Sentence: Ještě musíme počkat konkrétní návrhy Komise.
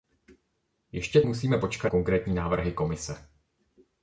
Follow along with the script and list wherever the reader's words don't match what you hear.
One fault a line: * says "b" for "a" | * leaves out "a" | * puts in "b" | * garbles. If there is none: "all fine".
all fine